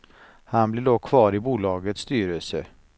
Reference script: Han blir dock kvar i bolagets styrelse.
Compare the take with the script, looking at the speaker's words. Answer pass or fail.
pass